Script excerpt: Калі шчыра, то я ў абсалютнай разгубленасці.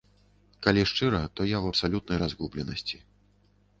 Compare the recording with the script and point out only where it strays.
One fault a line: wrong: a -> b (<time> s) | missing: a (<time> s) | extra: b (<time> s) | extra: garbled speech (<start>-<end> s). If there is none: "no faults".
no faults